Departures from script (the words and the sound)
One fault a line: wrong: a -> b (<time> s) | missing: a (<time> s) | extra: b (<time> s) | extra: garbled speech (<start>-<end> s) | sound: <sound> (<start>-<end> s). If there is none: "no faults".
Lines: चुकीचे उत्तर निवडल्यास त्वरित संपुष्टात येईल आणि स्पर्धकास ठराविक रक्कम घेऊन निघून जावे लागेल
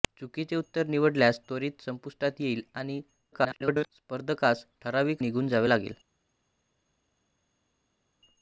extra: garbled speech (3.3-3.9 s)
missing: रक्कम घेऊन (5.2 s)